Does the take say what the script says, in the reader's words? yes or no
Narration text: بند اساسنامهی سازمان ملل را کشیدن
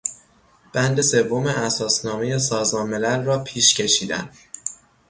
no